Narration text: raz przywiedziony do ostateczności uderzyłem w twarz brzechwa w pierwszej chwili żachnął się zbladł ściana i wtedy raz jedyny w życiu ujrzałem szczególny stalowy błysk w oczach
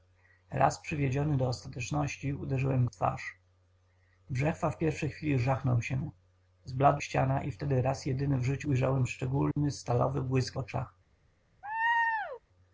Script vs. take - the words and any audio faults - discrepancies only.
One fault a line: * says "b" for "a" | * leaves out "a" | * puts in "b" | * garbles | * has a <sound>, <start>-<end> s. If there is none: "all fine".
* has a dropout, 9.5-9.6 s
* has a laugh, 11.6-12.4 s